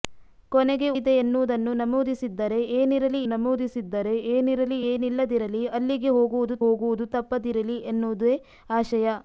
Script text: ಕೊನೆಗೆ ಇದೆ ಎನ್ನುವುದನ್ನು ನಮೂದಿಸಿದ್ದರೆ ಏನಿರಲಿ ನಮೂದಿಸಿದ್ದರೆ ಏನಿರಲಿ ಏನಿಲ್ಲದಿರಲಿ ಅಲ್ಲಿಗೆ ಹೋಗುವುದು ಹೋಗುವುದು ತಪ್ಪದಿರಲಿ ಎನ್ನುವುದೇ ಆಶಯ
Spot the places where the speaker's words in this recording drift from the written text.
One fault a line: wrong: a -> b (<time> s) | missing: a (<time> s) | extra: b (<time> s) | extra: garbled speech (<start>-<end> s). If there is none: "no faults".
no faults